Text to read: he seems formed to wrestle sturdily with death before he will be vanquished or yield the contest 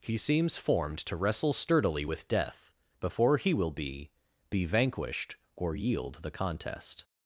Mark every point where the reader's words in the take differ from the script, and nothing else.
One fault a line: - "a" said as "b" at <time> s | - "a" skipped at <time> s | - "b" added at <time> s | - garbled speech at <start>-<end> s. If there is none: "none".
- "be" added at 4.5 s